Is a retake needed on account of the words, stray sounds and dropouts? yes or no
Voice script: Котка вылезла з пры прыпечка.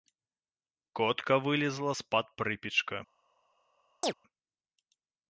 yes